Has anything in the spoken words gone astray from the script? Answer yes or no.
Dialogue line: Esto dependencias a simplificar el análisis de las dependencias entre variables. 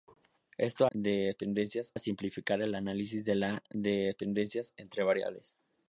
no